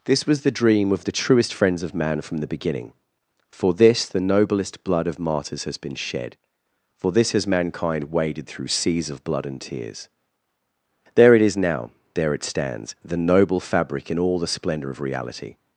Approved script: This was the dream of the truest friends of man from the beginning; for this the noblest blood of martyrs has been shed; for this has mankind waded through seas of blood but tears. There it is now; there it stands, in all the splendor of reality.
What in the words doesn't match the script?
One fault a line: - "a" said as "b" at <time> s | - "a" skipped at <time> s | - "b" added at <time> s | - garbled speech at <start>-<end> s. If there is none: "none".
- "but" said as "and" at 9.5 s
- "the noble fabric" added at 13.0 s